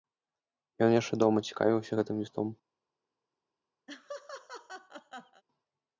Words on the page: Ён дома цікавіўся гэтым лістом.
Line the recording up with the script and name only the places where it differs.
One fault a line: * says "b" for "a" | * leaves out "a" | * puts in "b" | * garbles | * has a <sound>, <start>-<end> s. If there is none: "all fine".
* puts in "яшчэ"
* has a laugh, 3.9-5.4 s